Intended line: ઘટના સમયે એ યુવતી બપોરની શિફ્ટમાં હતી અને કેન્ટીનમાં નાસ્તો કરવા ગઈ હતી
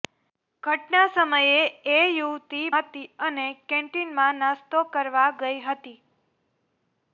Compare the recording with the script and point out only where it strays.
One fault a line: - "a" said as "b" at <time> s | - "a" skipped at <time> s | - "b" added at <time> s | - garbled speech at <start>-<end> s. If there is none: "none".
- "બપોરની શિફ્ટમાં" skipped at 2.6 s